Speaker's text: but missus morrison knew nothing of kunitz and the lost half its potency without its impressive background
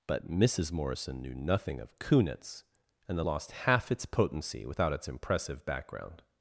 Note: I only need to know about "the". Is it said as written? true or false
true